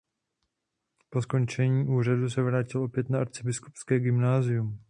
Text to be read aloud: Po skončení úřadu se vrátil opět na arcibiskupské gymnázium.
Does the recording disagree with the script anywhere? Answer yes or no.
no